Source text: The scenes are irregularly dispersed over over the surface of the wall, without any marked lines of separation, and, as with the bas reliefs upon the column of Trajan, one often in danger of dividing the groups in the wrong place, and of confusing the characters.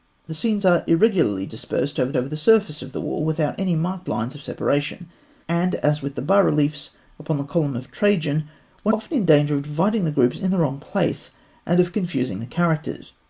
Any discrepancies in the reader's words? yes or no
no